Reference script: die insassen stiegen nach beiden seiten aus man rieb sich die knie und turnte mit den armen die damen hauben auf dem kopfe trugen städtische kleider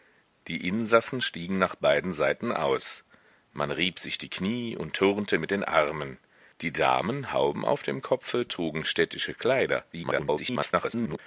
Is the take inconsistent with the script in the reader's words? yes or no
yes